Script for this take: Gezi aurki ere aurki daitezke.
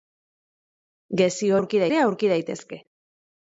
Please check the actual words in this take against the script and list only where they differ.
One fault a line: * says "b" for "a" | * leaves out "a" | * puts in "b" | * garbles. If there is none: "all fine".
all fine